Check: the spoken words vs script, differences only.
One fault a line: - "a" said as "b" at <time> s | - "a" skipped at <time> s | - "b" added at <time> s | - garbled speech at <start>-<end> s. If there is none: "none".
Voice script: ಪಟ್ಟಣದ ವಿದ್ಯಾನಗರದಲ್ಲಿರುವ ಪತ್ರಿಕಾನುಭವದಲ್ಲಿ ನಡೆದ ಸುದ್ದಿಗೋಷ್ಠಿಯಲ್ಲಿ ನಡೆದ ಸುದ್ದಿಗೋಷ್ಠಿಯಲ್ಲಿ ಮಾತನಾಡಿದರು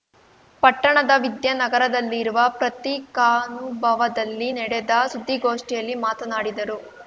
- "ನಡೆದ ಸುದ್ದಿಗೋಷ್ಠಿಯಲ್ಲಿ" skipped at 6.0 s